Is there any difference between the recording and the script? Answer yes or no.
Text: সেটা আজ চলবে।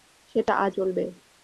no